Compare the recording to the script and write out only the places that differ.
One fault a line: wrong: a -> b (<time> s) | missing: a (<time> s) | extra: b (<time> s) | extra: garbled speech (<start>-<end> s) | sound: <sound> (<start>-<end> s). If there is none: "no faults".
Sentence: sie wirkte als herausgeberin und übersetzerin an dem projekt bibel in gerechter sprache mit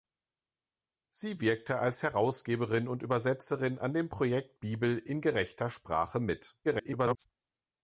extra: garbled speech (6.6-7.3 s)